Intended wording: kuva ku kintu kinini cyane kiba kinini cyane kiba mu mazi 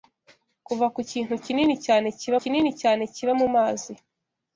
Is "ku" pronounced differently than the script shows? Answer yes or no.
no